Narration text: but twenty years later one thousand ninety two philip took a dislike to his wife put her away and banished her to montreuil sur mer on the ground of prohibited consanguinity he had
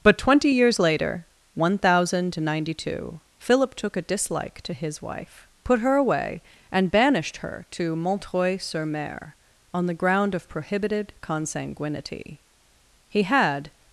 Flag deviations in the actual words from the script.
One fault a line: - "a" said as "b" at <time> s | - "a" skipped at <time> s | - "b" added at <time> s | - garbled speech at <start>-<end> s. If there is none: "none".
none